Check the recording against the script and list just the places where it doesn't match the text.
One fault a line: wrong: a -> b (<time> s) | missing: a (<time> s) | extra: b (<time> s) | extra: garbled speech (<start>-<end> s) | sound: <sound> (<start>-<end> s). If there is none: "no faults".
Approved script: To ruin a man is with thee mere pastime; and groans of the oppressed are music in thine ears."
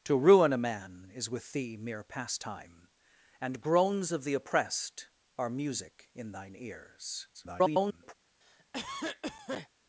extra: garbled speech (7.3-8.1 s)
sound: cough (8.4-9.7 s)